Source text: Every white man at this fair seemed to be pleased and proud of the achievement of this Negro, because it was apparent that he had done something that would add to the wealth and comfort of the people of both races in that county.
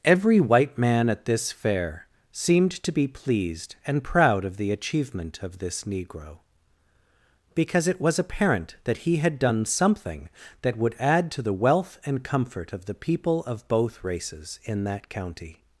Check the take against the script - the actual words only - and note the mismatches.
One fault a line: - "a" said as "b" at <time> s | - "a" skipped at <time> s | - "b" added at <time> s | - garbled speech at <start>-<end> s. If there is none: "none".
none